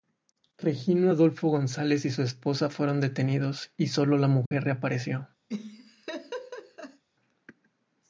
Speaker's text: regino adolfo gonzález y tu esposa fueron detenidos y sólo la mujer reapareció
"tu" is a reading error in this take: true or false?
true